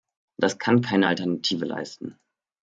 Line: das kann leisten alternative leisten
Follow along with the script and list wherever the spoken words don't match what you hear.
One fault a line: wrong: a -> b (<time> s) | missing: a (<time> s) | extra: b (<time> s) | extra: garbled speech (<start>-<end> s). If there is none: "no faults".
wrong: leisten -> keine (0.8 s)